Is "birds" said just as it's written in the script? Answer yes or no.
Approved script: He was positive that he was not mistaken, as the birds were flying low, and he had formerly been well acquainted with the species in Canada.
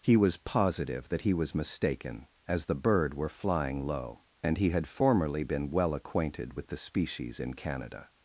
no